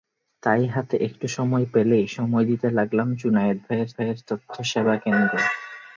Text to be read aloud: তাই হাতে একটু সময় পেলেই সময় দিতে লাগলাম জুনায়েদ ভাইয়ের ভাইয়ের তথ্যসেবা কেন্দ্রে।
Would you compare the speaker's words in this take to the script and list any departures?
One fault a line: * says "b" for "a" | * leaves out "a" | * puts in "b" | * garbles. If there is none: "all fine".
all fine